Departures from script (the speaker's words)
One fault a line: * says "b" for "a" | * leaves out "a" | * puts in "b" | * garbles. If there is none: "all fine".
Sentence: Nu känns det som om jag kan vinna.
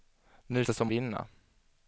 * leaves out "känns"
* leaves out "om jag kan"